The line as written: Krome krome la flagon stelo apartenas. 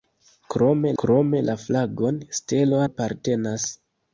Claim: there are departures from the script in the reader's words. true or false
false